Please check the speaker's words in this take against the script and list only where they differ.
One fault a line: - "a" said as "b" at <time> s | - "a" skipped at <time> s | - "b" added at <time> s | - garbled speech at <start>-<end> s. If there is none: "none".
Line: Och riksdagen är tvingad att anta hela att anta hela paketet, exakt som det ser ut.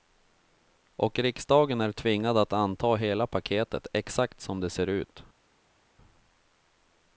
- "att anta hela" skipped at 3.3 s